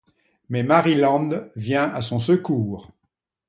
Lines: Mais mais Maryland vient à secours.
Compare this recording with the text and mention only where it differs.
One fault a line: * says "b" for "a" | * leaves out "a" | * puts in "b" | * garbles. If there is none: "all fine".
* leaves out "mais"
* puts in "son"